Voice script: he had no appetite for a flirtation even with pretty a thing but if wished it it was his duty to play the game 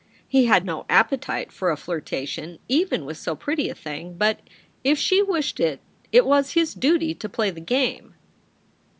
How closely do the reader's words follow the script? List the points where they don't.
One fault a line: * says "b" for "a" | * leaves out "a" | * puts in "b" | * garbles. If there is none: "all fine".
* puts in "so"
* puts in "she"